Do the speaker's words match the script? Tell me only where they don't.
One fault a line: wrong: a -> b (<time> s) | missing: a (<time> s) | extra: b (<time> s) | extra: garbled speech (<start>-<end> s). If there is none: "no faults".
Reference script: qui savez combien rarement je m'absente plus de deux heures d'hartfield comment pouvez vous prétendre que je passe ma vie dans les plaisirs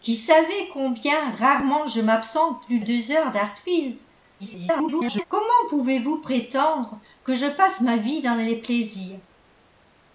missing: de (2.8 s)
extra: garbled speech (4.4-5.2 s)